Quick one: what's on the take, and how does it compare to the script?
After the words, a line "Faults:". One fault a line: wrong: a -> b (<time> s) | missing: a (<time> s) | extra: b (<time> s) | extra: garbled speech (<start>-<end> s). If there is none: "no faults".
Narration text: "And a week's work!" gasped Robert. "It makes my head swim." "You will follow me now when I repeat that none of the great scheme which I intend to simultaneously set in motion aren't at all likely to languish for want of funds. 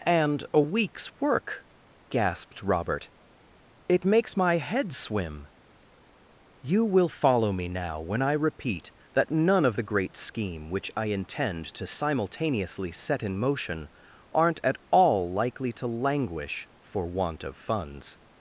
"And a week's work!" gasped Robert. "It makes my head swim." "You will follow me now when I repeat that none of the great scheme which I intend to simultaneously set in motion aren't at all likely to languish for want of funds.
Faults:
no faults